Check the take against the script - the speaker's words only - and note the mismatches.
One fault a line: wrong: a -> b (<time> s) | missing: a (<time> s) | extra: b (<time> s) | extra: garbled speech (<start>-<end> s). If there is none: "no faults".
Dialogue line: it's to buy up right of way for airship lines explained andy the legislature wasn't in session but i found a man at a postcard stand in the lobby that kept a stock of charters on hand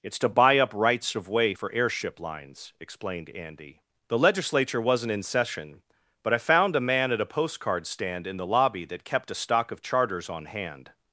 wrong: right -> rights (0.7 s)